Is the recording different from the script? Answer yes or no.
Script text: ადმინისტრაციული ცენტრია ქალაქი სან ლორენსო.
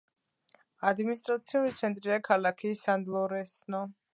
no